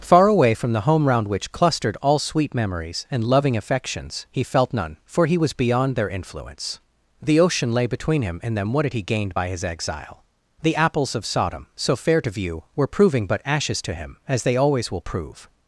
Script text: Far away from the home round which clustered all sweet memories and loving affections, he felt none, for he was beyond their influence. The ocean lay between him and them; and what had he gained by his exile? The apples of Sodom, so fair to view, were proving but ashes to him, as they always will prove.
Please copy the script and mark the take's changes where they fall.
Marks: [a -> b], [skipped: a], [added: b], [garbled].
Far away from the home round which clustered all sweet memories and loving affections, he felt none, for he was beyond their influence. The ocean lay between him and them; [skipped: and] what had he gained by his exile? The apples of Sodom, so fair to view, were proving but ashes to him, as they always will prove.